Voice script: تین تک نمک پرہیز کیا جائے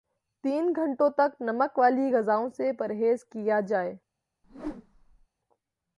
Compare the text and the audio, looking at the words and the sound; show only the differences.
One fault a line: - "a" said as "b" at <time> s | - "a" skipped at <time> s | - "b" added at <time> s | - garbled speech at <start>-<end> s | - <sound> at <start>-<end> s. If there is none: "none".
- "گھنٹوں" added at 0.8 s
- "والی غذاوں سے" added at 1.8 s
- whoosh at 4.4-5.3 s